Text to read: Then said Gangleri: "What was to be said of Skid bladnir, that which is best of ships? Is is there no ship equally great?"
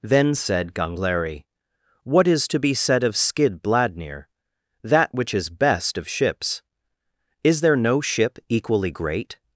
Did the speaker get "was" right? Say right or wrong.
wrong